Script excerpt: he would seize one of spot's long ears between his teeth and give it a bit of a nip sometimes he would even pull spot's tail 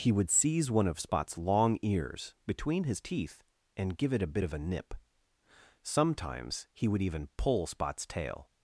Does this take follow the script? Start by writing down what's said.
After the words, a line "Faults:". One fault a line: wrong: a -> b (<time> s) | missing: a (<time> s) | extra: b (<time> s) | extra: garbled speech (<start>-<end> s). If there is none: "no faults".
he would seize one of spot's long ears between his teeth and give it a bit of a nip sometimes he would even pull spot's tail
Faults:
no faults